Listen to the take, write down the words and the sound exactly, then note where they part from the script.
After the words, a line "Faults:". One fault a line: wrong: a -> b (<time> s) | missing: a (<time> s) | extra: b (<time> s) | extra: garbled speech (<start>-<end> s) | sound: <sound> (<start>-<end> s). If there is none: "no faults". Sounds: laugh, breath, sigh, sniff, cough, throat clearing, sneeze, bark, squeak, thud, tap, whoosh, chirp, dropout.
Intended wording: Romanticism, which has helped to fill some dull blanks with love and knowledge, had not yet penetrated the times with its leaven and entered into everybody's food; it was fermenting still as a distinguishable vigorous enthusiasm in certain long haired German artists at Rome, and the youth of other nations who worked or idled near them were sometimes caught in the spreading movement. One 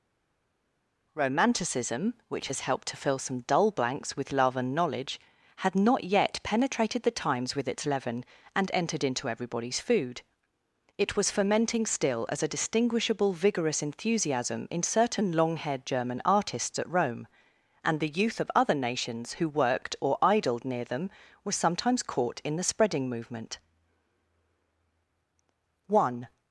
Romanticism, which has helped to fill some dull blanks with love and knowledge, had not yet penetrated the times with its leaven and entered into everybody's food; it was fermenting still as a distinguishable vigorous enthusiasm in certain long haired German artists at Rome, and the youth of other nations who worked or idled near them were sometimes caught in the spreading movement. One
Faults:
no faults